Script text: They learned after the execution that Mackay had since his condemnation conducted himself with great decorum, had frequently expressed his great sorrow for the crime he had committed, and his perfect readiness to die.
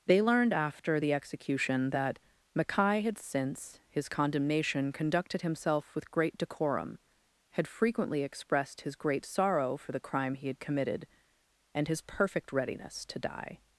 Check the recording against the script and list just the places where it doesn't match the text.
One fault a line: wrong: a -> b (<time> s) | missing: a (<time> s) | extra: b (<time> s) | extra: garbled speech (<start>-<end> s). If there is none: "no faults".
no faults